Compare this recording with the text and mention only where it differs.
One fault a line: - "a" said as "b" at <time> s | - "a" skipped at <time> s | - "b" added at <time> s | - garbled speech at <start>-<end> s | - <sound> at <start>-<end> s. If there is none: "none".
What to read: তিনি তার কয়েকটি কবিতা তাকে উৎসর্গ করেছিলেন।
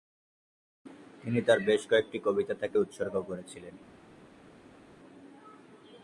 - "বেশ" added at 1.6 s